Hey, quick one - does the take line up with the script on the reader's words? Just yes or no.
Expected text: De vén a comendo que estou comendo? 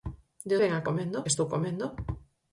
yes